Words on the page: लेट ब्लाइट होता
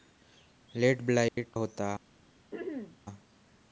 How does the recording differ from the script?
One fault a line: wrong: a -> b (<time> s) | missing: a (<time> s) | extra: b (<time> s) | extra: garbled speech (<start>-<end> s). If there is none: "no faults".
no faults